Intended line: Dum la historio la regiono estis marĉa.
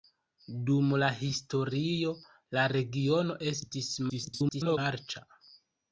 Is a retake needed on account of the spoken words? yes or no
yes